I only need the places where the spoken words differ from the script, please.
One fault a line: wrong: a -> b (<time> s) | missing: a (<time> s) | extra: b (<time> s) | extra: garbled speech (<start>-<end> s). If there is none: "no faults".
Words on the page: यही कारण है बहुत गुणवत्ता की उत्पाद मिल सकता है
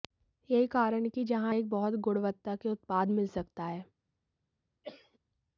extra: कि जहां एक (1.1 s)
wrong: की -> के (2.6 s)